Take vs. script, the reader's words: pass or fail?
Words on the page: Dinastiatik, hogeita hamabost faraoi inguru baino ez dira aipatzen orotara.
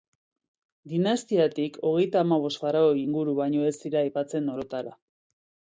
pass